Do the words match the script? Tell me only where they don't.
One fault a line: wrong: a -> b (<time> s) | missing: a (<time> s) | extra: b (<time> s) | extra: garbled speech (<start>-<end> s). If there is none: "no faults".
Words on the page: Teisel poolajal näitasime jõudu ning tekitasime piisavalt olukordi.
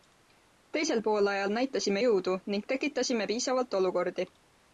no faults